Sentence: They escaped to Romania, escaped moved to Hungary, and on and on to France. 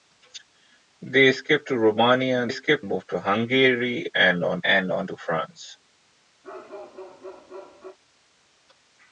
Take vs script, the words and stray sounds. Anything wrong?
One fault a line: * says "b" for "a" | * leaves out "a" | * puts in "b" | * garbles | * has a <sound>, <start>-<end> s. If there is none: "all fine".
* has a bark, 6.4-8.0 s